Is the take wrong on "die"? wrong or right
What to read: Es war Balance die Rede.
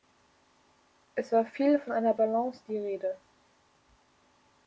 right